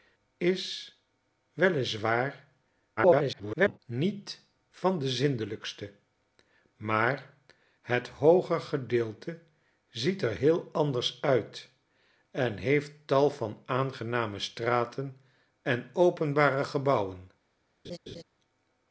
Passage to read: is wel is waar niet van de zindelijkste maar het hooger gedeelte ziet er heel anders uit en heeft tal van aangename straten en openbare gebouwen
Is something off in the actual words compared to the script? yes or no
yes